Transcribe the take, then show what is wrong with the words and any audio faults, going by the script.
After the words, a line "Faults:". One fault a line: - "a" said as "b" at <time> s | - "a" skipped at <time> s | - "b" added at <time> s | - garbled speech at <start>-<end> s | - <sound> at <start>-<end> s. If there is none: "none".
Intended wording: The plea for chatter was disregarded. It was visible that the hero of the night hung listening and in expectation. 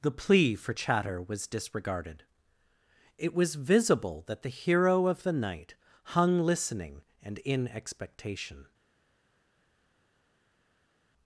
The plea for chatter was disregarded. It was visible that the hero of the night hung listening and in expectation.
Faults:
none